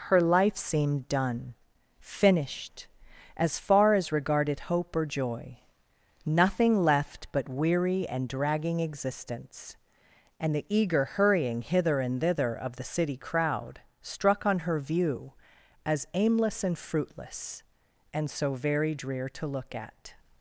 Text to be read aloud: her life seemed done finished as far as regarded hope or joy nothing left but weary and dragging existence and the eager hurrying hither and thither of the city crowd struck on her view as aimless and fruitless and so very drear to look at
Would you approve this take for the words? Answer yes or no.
yes